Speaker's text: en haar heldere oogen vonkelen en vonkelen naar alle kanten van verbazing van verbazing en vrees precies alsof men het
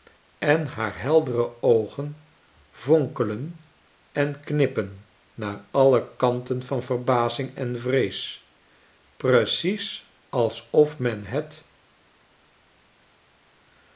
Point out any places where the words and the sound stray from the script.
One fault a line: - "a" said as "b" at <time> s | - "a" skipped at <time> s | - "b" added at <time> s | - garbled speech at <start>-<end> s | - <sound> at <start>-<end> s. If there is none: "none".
- "vonkelen" said as "knippen" at 4.4 s
- "van verbazing" skipped at 7.5 s